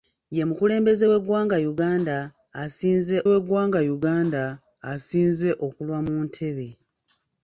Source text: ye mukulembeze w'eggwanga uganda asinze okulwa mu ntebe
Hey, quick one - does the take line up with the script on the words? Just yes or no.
no